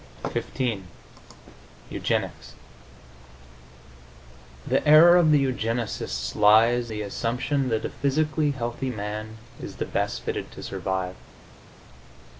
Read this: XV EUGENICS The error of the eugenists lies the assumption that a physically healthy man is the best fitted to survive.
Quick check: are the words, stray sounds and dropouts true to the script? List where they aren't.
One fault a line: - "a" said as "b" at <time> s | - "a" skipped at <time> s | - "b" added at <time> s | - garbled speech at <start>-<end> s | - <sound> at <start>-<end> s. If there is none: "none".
none